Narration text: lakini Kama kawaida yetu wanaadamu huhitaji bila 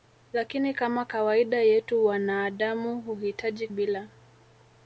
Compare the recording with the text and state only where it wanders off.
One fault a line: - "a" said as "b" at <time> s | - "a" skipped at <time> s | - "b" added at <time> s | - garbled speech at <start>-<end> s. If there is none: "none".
none